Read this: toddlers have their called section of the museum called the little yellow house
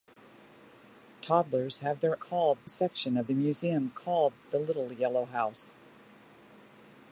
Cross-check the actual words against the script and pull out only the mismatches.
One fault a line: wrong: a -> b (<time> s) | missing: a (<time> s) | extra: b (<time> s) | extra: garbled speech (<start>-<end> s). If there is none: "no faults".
no faults